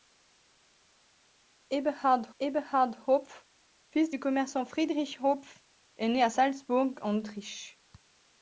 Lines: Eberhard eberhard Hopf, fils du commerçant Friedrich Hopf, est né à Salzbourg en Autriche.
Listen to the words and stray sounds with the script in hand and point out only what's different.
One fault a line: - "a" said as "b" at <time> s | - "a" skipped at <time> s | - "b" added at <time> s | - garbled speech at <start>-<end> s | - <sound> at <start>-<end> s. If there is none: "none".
none